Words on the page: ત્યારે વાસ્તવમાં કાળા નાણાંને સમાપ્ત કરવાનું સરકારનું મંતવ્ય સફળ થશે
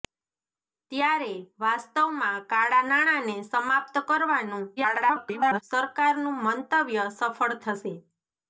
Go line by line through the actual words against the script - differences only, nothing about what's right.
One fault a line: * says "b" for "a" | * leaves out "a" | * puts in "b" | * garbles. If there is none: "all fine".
* garbles